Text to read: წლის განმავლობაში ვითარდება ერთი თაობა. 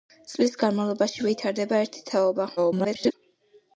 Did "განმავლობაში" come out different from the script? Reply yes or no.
no